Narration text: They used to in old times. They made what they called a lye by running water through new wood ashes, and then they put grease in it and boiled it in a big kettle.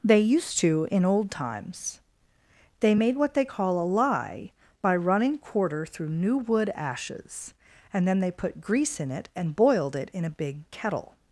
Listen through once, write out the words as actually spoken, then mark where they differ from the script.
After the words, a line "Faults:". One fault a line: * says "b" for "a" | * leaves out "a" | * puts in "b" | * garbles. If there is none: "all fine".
They used to in old times. They made what they call a lye by running quarter through new wood ashes, and then they put grease in it and boiled it in a big kettle.
Faults:
* says "call" for "called"
* says "quarter" for "water"